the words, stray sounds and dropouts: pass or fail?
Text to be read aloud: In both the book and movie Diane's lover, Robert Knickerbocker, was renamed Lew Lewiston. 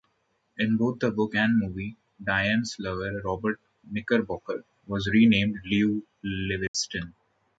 fail